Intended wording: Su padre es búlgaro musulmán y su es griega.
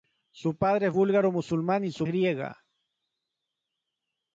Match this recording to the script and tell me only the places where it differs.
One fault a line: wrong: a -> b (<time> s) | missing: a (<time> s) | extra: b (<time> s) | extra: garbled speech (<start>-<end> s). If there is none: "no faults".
no faults